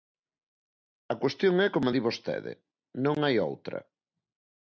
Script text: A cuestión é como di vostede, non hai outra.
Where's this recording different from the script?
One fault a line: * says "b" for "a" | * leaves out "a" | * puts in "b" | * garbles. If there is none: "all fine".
all fine